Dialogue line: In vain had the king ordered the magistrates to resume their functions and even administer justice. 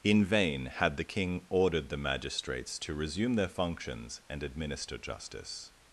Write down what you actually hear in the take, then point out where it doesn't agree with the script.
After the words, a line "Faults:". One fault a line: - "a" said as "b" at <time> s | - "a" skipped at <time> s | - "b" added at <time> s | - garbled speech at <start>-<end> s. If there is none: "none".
In vain had the king ordered the magistrates to resume their functions and administer justice.
Faults:
- "even" skipped at 4.4 s